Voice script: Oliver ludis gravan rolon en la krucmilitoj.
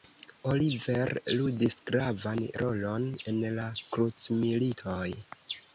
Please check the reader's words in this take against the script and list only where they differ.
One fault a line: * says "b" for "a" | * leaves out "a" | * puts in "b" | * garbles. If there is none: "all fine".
all fine